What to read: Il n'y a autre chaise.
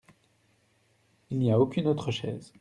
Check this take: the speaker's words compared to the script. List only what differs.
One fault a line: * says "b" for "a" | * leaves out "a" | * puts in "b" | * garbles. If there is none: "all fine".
* puts in "aucune"